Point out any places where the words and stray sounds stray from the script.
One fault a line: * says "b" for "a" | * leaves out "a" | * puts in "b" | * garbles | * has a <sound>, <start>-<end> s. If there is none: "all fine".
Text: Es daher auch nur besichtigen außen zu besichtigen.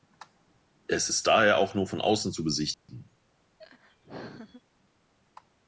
* puts in "ist"
* says "von" for "besichtigen"
* has a dropout, 2.7-2.9 s
* has a laugh, 3.6-4.6 s